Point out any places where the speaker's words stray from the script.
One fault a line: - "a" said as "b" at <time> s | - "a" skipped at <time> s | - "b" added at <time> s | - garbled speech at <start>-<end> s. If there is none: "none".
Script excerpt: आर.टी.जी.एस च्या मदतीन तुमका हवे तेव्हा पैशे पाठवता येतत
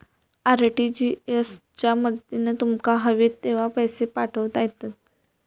none